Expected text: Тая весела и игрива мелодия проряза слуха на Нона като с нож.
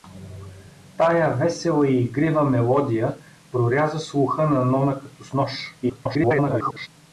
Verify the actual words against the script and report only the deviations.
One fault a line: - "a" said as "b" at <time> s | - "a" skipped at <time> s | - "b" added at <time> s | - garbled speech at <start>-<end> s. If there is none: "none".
- garbled speech at 5.8-6.9 s